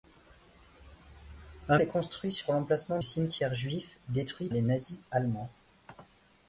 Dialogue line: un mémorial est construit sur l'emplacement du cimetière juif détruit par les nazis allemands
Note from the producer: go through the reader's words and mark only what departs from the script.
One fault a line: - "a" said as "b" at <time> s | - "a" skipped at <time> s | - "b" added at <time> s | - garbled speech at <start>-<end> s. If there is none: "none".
- "mémorial" skipped at 1.8 s
- "du" skipped at 3.0 s
- "par" skipped at 4.5 s